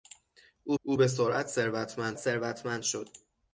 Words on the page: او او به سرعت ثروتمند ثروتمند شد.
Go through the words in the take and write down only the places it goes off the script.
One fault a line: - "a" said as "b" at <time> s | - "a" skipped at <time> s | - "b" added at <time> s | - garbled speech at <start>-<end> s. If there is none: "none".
none